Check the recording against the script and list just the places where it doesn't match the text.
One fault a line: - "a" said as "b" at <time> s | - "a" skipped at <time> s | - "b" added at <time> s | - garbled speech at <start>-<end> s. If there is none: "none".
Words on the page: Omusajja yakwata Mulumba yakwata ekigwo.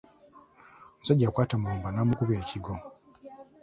- "yakwata" said as "n'amukuba" at 1.9 s